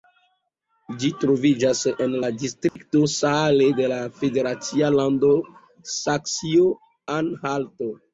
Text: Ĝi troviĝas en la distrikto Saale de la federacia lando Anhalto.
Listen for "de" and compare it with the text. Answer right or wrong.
right